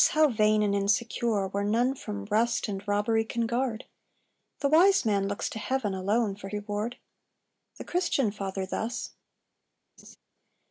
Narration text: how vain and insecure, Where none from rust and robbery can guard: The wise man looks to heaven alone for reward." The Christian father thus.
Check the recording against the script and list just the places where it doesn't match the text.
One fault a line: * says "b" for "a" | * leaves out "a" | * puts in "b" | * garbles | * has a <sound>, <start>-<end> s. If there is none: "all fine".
* has a laugh, 10.0-10.2 s